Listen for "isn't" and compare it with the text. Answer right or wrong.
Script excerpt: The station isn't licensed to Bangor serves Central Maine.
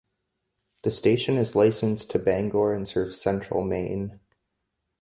wrong